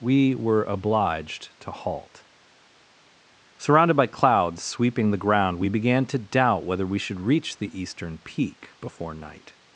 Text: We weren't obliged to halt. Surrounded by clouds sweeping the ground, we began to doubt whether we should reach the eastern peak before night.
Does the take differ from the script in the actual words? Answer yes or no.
yes